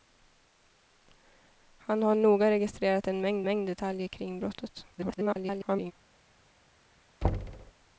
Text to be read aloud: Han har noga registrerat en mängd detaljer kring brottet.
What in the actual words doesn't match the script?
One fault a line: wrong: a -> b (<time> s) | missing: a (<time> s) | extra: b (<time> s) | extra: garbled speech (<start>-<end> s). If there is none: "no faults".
extra: mängd (3.4 s)
extra: garbled speech (4.9-5.9 s)